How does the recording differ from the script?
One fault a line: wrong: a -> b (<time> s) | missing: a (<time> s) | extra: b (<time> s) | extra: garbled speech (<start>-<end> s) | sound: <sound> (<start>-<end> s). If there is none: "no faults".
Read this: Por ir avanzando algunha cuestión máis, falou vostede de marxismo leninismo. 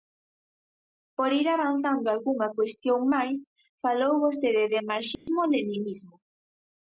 sound: dropout (5.2-5.3 s)